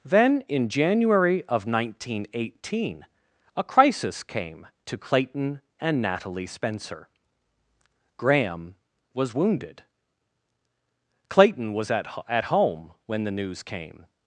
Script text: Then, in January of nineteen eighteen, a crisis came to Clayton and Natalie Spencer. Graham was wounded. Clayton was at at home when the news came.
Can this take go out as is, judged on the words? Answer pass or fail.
pass